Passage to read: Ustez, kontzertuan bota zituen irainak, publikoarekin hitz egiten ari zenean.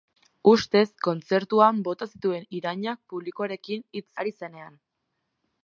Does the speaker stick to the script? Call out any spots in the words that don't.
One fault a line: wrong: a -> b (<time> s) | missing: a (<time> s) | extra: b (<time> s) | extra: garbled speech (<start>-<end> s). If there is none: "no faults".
missing: egiten (4.1 s)